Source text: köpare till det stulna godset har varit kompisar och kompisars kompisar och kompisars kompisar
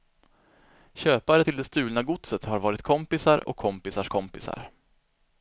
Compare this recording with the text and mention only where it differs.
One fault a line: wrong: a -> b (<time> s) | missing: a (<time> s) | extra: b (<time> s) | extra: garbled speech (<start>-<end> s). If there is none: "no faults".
missing: och kompisars kompisar (4.7 s)